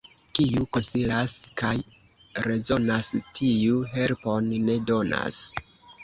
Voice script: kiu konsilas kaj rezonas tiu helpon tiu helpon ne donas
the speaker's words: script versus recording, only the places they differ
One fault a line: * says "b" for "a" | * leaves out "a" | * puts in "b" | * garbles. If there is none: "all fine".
* leaves out "tiu helpon"